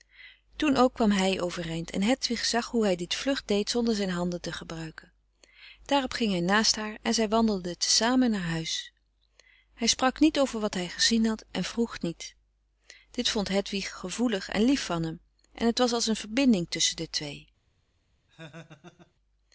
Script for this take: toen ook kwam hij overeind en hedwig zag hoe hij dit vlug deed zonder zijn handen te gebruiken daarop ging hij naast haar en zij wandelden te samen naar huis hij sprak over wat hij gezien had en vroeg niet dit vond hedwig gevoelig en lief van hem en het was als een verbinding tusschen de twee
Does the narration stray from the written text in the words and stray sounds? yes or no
yes